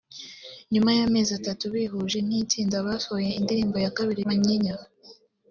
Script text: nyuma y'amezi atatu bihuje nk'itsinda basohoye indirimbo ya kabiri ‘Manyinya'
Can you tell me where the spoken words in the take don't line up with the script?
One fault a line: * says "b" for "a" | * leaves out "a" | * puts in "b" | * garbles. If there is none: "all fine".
all fine